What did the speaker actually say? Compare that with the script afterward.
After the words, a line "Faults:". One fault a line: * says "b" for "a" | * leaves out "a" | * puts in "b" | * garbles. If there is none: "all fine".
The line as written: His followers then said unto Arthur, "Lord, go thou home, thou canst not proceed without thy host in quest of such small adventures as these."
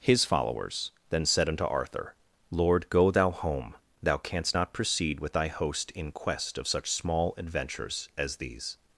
His followers then said unto Arthur, "Lord, go thou home, thou canst not proceed with thy host in quest of such small adventures as these."
Faults:
* says "with" for "without"